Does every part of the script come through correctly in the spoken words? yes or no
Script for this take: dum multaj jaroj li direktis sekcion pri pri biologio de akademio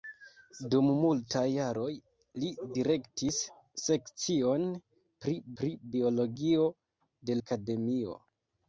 yes